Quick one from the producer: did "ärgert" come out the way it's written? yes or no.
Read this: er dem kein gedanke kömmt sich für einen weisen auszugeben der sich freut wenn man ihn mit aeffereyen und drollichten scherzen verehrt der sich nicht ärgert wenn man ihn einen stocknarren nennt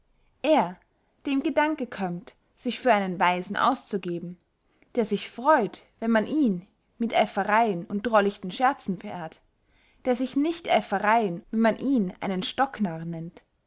no